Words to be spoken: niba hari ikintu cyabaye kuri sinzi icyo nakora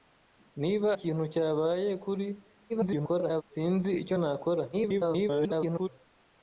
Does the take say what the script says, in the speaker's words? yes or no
no